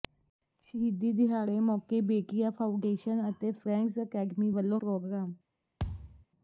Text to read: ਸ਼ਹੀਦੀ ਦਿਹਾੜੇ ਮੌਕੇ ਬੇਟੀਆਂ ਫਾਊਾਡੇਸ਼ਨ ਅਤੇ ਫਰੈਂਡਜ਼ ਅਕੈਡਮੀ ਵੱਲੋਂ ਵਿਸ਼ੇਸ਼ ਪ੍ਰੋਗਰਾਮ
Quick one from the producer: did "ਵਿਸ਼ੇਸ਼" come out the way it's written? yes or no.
no